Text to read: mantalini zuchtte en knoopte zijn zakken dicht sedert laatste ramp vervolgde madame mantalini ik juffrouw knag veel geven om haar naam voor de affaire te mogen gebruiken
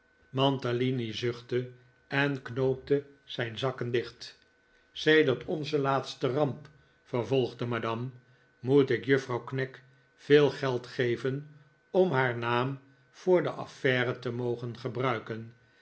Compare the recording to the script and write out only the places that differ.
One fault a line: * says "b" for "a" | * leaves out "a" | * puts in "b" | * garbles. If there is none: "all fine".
* puts in "onze"
* says "moet" for "mantalini"
* puts in "geld"